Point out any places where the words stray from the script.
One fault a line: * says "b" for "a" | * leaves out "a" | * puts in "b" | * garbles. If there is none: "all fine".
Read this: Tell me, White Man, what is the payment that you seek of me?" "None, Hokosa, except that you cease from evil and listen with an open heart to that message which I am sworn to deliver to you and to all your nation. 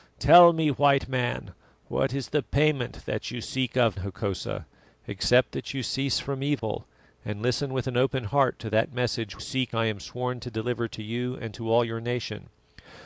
* leaves out "me None"
* says "seek" for "which"